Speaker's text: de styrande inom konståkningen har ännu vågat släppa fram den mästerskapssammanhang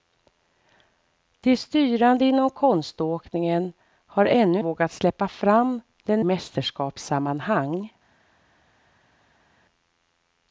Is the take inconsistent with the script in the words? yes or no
no